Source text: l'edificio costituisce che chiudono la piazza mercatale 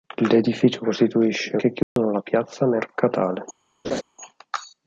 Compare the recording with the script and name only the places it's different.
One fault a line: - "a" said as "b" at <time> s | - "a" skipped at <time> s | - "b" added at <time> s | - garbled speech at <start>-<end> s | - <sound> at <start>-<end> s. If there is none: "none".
- dropout at 1.8-2.0 s
- laugh at 3.8-4.0 s